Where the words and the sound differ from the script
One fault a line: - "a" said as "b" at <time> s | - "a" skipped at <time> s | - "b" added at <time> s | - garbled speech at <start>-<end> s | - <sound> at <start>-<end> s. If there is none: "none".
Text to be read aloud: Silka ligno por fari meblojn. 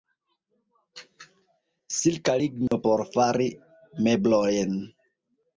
- dropout at 2.7-2.7 s